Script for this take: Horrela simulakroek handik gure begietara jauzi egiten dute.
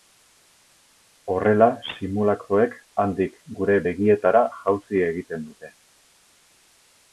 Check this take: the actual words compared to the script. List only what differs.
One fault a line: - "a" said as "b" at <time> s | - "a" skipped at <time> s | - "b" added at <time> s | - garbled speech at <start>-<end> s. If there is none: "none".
none